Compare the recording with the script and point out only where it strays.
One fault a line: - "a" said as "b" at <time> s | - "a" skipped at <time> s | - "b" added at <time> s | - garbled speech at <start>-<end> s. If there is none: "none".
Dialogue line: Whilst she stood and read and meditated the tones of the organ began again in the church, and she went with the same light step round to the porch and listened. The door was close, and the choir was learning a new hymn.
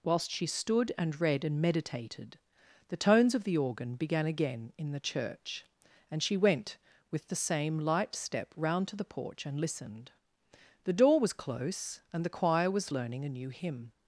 none